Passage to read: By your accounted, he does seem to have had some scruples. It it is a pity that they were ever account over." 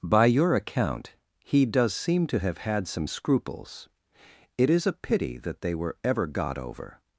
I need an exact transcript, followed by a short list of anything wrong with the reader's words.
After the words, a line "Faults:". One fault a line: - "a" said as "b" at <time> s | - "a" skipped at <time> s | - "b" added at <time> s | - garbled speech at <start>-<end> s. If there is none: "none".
By your account, he does seem to have had some scruples. It is a pity that they were ever got over."
Faults:
- "accounted" said as "account" at 0.6 s
- "it" skipped at 4.7 s
- "account" said as "got" at 6.3 s